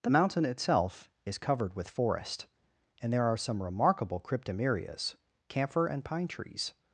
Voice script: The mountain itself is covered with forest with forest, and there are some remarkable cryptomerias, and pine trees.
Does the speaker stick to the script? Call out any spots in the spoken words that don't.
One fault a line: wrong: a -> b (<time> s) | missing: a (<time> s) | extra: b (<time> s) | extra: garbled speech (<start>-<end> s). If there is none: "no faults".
missing: with forest (2.5 s)
extra: camphor (5.5 s)